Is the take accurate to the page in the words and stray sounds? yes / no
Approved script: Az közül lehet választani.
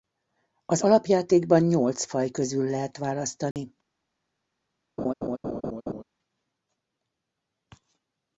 no